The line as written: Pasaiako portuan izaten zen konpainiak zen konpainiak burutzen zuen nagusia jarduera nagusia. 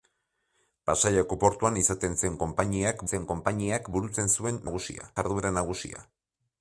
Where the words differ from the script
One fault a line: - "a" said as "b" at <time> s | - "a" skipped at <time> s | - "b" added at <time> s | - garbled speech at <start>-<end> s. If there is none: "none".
none